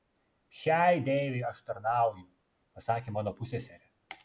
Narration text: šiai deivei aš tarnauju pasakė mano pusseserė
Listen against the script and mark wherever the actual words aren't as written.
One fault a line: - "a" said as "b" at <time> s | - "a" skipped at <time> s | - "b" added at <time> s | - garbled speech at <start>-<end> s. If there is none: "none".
none